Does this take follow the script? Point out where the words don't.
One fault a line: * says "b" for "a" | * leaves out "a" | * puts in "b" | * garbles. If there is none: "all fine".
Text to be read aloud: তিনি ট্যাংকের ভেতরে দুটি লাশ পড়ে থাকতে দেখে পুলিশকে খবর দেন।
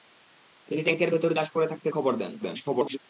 * leaves out "দুটি"
* leaves out "দেখে পুলিশকে"
* garbles